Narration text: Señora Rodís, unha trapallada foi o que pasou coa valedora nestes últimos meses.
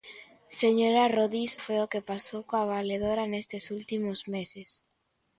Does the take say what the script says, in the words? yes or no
no